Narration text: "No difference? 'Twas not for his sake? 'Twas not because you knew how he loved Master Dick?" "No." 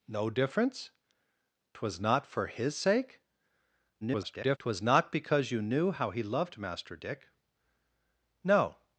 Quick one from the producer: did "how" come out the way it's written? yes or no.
yes